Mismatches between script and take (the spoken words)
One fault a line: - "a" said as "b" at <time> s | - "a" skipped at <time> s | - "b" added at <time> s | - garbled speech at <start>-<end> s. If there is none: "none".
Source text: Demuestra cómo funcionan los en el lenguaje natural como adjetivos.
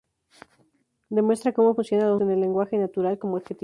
none